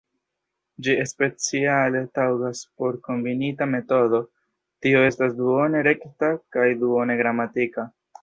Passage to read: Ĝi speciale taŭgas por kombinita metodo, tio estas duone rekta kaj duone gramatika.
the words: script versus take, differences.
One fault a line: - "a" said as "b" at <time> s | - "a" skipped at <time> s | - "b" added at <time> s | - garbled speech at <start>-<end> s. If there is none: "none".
none